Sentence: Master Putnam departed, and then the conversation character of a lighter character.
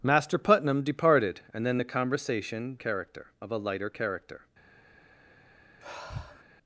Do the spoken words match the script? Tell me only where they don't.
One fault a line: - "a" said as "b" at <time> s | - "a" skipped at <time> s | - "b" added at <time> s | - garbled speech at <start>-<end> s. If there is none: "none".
none